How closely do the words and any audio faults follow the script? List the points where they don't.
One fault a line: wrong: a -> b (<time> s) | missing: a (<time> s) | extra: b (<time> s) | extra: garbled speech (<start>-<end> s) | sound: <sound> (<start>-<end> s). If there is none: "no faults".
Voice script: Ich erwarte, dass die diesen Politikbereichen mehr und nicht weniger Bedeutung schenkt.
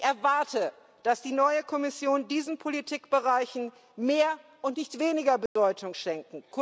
extra: neue Kommission (1.3 s)
sound: dropout (5.5-5.6 s)